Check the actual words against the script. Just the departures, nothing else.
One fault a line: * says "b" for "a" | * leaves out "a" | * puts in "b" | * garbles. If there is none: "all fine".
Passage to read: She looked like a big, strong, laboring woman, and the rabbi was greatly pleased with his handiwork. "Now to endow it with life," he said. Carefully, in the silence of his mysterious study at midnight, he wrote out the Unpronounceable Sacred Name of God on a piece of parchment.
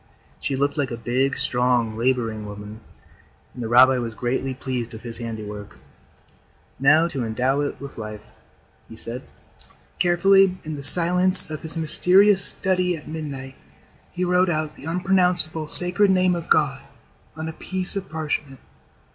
all fine